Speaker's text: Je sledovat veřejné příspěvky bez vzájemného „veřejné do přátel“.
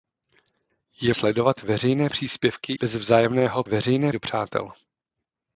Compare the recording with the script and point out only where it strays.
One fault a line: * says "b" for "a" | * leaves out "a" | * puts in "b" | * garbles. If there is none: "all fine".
all fine